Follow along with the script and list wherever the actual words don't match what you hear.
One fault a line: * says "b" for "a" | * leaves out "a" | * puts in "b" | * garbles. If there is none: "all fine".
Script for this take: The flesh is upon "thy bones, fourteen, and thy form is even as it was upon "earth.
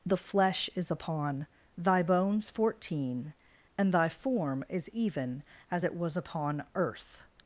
all fine